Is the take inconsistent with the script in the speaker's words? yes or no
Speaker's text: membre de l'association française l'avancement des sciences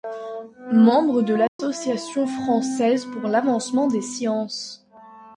yes